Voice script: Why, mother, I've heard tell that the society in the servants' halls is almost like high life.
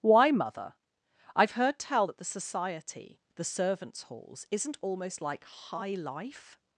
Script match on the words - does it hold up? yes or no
no